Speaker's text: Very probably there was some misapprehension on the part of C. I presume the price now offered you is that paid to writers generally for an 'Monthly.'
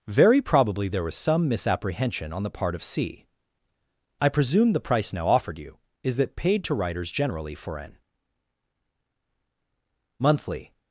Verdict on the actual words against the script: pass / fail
pass